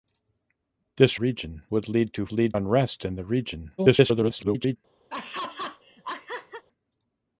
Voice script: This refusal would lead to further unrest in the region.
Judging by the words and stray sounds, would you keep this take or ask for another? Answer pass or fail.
fail